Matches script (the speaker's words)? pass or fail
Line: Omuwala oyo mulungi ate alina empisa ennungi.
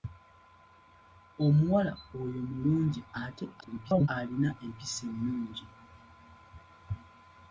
fail